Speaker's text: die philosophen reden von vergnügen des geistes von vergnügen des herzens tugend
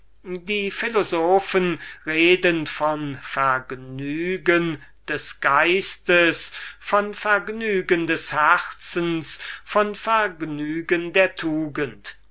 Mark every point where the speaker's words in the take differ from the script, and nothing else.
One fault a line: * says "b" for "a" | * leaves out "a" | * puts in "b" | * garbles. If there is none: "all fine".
* puts in "von vergnügen der"